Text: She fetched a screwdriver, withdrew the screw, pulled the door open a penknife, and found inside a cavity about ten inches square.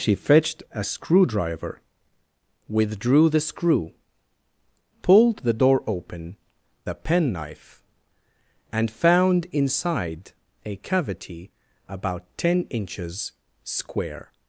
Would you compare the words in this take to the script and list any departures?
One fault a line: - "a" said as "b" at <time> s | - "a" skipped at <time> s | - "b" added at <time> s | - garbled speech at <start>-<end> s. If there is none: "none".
none